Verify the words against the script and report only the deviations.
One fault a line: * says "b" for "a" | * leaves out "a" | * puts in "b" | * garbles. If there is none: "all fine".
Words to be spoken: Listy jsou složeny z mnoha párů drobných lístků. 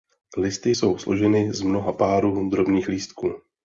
all fine